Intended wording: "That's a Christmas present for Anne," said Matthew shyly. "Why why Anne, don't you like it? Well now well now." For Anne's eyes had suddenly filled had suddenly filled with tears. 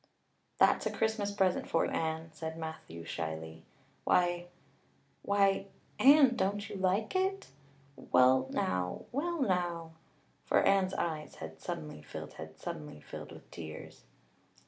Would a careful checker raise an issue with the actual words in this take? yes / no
no